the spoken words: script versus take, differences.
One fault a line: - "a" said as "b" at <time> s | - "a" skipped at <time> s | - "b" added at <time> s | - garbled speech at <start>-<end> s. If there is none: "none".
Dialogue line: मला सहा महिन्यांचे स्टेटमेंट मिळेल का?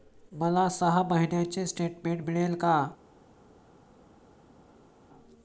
none